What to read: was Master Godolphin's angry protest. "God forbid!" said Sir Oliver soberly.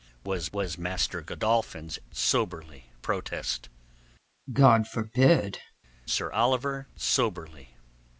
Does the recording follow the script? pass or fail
fail